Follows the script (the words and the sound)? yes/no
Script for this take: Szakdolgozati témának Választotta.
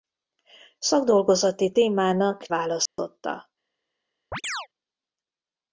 no